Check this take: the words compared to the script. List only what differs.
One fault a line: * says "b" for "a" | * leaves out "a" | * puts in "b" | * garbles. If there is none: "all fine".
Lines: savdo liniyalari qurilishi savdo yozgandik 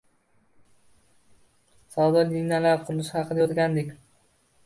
* says "haqida" for "savdo"